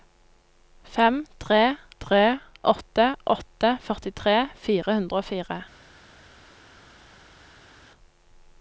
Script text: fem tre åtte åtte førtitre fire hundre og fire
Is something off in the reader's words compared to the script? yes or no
yes